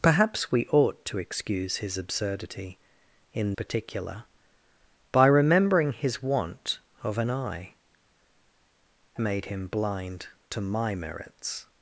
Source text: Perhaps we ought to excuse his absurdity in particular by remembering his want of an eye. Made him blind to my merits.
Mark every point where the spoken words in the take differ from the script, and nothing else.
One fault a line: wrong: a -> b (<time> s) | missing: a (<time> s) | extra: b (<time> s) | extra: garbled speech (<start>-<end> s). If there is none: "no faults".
no faults